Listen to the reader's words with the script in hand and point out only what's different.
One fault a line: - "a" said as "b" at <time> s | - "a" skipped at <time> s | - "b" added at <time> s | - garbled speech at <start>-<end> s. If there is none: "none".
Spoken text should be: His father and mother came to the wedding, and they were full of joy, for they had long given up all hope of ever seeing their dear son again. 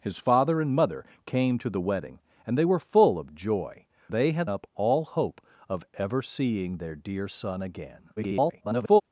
- "for" skipped at 3.9 s
- "long given" skipped at 4.5 s
- garbled speech at 8.2-9.0 s